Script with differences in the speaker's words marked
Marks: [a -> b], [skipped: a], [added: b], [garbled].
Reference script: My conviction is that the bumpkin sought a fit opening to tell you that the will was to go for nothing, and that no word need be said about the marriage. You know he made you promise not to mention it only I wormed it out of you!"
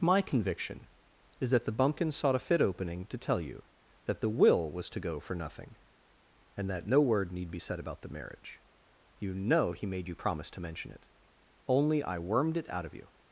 My conviction is that the bumpkin sought a fit opening to tell you that the will was to go for nothing, and that no word need be said about the marriage. You know he made you promise [skipped: not] to mention it only I wormed it out of you!"